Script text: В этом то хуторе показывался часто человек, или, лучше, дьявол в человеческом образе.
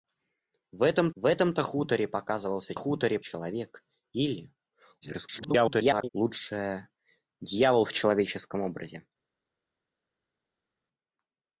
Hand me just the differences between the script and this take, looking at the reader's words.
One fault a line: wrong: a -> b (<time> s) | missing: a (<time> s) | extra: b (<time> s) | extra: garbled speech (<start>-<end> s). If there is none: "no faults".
extra: в этом (1.1 s)
wrong: часто -> хуторе (2.7 s)
extra: garbled speech (5.0-6.1 s)